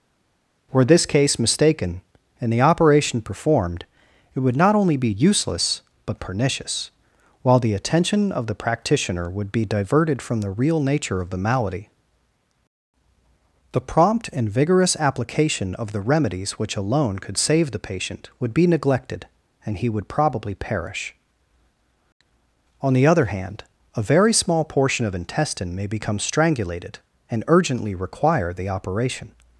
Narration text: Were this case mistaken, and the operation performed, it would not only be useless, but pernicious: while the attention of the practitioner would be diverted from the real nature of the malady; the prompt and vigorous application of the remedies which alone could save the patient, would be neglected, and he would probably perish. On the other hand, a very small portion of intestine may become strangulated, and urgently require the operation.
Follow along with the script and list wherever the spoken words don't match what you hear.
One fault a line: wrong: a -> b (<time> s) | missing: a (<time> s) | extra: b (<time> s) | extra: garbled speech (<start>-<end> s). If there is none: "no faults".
no faults